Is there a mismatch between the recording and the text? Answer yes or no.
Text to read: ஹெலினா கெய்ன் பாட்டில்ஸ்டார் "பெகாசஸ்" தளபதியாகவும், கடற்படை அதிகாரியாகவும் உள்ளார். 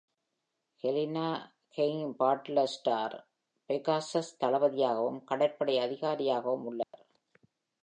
no